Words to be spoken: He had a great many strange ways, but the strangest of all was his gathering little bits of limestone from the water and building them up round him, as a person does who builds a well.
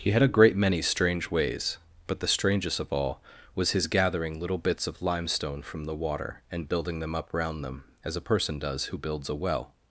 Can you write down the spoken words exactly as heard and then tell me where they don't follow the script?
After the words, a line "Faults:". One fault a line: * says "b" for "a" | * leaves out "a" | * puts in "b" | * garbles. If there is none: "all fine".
He had a great many strange ways, but the strangest of all was his gathering little bits of limestone from the water and building them up round them, as a person does who builds a well.
Faults:
* says "them" for "him"